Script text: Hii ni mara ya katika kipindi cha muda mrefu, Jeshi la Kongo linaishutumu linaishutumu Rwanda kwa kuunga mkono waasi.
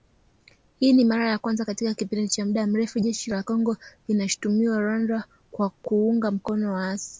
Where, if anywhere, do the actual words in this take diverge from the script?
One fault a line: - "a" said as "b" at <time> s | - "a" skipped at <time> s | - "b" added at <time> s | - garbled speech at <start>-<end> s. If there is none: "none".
- "kwanza" added at 1.4 s
- "linaishutumu" skipped at 4.8 s